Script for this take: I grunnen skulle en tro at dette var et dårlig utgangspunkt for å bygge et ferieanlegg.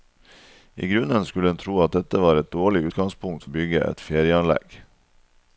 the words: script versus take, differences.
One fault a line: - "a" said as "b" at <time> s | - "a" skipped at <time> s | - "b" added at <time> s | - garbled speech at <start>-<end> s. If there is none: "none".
- "for" skipped at 3.5 s